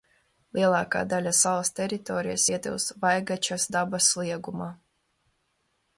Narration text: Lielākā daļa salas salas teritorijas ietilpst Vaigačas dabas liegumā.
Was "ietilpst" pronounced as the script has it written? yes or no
yes